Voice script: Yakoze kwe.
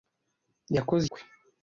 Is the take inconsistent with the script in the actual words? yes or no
no